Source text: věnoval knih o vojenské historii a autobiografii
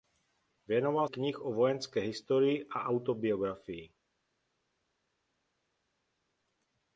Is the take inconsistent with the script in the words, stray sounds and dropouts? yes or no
no